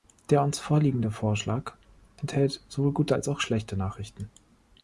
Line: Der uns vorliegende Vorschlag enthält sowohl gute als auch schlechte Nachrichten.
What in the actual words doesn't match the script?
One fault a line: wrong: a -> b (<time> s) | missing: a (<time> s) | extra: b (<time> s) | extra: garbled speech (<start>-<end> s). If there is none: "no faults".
no faults